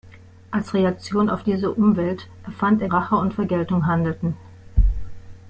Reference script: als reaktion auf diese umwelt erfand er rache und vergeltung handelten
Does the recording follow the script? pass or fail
pass